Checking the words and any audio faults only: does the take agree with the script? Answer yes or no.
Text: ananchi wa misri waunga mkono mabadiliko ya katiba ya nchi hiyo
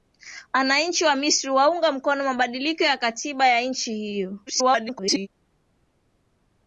no